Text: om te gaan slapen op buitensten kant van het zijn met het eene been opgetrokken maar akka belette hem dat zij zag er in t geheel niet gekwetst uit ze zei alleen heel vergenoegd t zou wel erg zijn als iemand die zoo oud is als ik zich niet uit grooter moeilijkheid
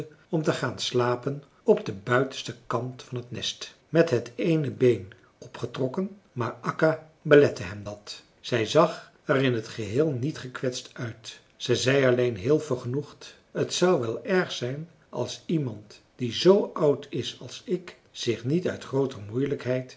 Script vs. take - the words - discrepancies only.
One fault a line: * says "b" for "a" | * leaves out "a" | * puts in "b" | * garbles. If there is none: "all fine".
* puts in "den"
* says "nest" for "zijn"